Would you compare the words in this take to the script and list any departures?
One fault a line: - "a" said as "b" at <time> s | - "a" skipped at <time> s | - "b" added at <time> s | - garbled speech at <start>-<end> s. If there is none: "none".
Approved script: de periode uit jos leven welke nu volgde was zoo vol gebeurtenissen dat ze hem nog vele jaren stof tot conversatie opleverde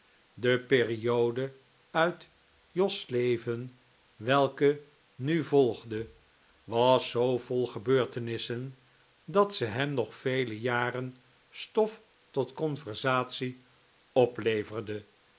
none